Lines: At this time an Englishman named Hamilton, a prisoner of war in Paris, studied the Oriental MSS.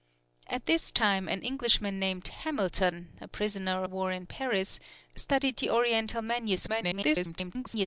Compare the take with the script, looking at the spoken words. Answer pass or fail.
fail